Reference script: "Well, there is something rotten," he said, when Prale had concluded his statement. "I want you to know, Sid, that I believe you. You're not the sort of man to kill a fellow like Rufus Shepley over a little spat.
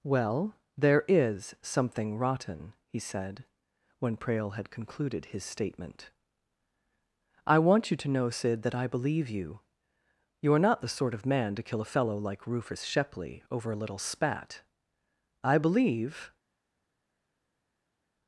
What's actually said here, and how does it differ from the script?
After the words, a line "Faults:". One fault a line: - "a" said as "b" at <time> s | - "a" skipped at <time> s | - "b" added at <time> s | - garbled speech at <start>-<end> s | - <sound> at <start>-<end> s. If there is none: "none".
"Well, there is something rotten," he said, when Prale had concluded his statement. "I want you to know, Sid, that I believe you. You're not the sort of man to kill a fellow like Rufus Shepley over a little spat. I believe
Faults:
- "I believe" added at 15.4 s